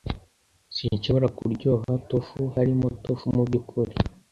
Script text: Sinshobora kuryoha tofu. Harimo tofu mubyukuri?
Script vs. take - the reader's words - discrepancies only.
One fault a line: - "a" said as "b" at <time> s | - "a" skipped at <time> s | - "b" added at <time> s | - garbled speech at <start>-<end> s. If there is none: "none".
none